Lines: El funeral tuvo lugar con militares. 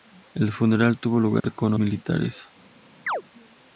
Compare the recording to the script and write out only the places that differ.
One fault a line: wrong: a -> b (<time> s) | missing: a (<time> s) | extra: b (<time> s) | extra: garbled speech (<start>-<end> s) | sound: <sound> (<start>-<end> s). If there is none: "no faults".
sound: dropout (1.4-1.4 s)
sound: chirp (3.1-3.2 s)